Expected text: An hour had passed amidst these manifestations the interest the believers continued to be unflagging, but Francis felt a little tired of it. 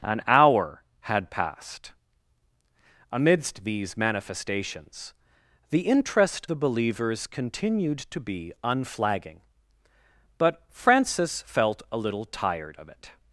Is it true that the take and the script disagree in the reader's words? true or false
false